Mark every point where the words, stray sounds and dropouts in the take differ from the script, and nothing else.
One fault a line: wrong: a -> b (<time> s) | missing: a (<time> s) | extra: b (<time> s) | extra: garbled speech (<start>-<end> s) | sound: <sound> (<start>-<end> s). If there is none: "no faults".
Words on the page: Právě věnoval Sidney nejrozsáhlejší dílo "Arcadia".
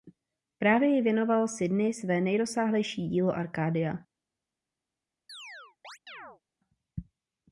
extra: jí (0.9 s)
extra: své (1.9 s)
sound: chirp (5.3-6.4 s)